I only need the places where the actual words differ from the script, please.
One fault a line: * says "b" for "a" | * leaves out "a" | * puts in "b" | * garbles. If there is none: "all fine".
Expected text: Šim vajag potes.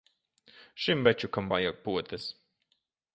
* puts in "večukam"